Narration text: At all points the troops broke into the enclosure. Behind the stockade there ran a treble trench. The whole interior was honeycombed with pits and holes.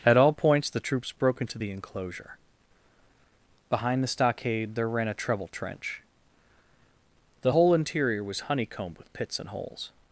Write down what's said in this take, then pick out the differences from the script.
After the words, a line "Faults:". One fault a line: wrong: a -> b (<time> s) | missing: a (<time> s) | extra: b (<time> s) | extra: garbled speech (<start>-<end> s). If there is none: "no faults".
At all points the troops broke into the enclosure. Behind the stockade there ran a treble trench. The whole interior was honeycombed with pits and holes.
Faults:
no faults